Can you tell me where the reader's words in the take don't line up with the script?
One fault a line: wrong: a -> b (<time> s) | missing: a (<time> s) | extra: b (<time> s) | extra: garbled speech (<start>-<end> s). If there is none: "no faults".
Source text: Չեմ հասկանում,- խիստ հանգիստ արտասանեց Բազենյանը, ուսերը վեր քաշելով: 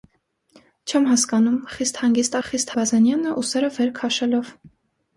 wrong: արտասանեց -> խիստ (2.5 s)